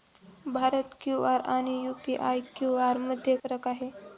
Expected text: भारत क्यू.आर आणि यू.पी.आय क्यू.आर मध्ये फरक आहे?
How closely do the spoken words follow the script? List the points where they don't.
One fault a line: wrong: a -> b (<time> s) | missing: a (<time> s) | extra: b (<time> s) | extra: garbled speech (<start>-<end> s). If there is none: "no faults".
no faults